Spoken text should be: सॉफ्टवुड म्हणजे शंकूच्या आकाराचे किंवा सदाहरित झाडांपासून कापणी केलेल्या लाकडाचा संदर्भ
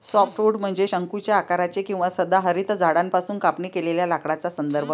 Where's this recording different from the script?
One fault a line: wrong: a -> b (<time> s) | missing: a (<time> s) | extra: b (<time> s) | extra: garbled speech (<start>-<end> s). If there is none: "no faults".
no faults